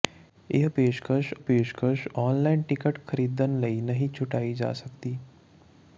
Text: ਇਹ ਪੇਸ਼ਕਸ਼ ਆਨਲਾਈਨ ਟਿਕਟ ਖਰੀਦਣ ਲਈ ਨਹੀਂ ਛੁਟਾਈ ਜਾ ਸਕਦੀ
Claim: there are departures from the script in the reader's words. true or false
true